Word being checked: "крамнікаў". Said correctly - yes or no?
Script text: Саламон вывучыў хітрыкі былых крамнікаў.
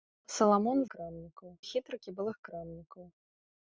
yes